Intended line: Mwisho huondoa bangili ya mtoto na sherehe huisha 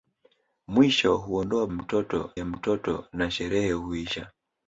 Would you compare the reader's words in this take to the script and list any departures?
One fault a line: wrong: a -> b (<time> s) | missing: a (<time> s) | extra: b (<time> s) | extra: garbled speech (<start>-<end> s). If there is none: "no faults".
wrong: bangili -> mtoto (1.7 s)